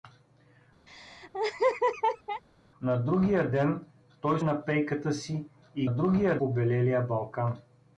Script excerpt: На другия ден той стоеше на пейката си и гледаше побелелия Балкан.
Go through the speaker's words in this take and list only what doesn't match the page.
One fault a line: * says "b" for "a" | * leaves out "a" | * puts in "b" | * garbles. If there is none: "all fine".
* leaves out "стоеше"
* says "другия" for "гледаше"